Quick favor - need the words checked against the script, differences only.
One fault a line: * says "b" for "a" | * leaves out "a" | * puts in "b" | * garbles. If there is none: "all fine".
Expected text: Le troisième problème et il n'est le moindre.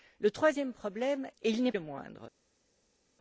all fine